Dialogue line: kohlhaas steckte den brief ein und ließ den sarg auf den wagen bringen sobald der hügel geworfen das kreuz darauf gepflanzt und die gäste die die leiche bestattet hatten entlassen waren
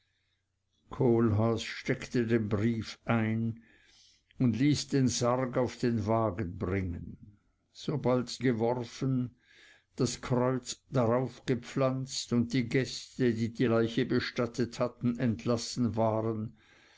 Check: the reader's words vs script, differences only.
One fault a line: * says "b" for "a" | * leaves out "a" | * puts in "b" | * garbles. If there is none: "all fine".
* leaves out "der hügel"